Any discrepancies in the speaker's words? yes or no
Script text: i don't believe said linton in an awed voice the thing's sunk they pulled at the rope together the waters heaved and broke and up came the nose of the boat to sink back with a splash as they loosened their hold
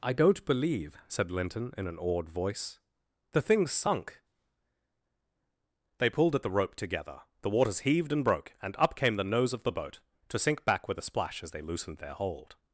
no